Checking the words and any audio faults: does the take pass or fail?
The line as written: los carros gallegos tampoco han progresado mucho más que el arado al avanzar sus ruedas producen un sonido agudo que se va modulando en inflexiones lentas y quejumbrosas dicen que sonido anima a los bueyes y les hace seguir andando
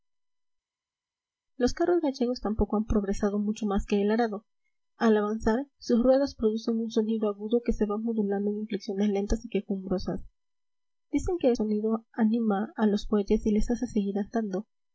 pass